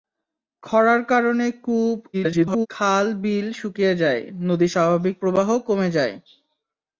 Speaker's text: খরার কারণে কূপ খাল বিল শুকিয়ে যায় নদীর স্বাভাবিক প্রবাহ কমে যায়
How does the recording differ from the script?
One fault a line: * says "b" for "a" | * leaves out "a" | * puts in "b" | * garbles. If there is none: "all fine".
* garbles